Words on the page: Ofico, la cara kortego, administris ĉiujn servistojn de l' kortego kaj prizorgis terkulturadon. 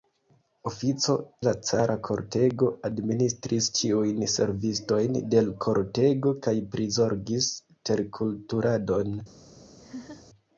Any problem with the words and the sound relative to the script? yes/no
yes